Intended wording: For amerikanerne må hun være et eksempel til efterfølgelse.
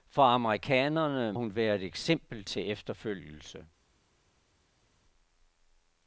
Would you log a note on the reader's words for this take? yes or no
yes